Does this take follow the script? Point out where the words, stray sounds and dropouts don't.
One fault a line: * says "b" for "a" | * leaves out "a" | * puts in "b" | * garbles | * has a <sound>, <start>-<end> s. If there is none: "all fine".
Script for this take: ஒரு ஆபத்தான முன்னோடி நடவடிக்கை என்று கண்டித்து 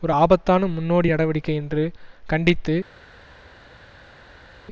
all fine